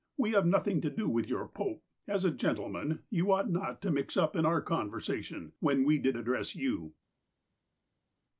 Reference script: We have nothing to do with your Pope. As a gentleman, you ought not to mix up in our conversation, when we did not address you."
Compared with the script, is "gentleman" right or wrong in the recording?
right